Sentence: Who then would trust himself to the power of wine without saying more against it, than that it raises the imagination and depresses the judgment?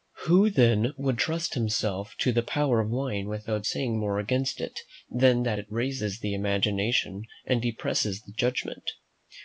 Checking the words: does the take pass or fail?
pass